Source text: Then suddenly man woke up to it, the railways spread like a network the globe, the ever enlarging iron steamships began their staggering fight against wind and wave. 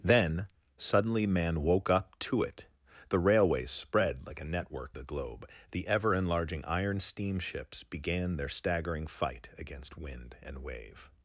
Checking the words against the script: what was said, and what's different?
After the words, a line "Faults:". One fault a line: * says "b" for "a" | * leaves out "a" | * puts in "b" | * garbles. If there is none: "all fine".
Then suddenly man woke up to it, the railways spread like a network the globe, the ever enlarging iron steamships began their staggering fight against wind and wave.
Faults:
all fine